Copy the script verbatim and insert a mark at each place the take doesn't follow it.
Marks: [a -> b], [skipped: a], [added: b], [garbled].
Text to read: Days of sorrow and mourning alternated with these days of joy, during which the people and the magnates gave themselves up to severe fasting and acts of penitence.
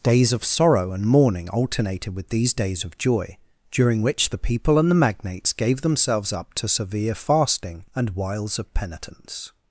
Days of sorrow and mourning alternated with these days of joy, during which the people and the magnates gave themselves up to severe fasting and [acts -> wiles] of penitence.